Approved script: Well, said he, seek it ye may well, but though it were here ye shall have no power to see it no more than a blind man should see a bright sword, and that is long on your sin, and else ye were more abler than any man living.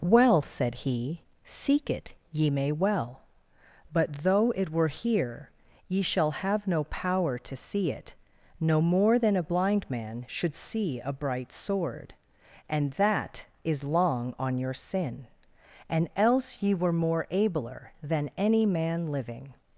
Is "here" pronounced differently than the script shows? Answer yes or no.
no